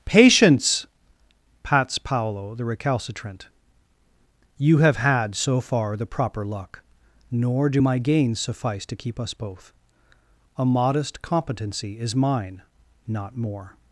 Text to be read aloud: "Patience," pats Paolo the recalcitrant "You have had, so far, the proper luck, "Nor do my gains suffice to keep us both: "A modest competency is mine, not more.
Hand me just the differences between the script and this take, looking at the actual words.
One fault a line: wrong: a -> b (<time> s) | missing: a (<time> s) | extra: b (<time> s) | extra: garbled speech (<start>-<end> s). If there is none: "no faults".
no faults